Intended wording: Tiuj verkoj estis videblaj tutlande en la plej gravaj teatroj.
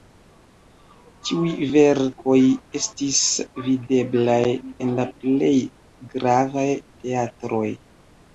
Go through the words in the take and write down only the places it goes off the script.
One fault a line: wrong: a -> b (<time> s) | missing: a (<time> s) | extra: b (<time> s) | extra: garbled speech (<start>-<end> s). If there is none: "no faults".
missing: tutlande (4.4 s)